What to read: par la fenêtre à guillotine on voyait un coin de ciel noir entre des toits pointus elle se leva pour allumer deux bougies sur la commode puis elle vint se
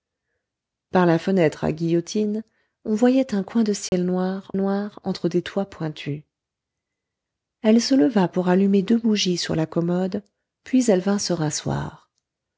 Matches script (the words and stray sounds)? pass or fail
fail